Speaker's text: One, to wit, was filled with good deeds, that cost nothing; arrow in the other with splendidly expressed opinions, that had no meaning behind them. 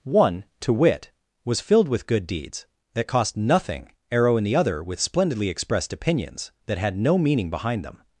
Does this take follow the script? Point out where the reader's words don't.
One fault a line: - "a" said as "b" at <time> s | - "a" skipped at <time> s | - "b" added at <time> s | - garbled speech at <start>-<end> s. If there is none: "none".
none